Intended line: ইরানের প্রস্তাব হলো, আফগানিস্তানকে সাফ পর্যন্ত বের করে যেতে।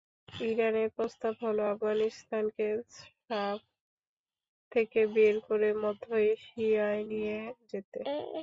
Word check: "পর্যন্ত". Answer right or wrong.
wrong